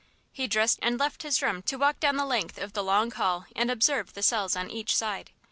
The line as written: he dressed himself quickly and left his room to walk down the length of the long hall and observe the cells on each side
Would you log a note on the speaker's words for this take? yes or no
yes